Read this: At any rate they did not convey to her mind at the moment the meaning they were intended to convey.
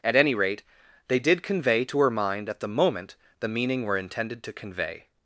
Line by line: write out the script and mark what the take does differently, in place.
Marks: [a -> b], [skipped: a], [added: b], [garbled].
At any rate they did [skipped: not] convey to her mind at the moment the meaning [skipped: they] were intended to convey.